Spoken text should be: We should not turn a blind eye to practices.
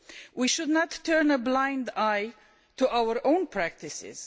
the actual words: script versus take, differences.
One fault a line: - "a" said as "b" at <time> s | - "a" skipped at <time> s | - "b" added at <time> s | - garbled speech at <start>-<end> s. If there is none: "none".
- "our own" added at 2.9 s